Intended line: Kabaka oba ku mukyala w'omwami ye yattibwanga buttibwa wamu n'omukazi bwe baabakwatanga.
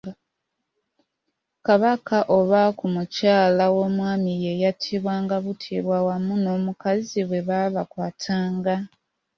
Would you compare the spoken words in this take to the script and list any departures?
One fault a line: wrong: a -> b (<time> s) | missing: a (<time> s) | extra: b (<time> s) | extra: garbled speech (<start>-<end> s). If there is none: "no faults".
no faults